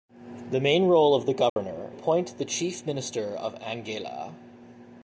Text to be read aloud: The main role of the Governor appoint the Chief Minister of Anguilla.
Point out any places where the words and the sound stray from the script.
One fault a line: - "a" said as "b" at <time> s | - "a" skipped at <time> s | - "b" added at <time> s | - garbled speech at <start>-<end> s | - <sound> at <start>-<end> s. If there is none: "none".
- dropout at 1.5-1.6 s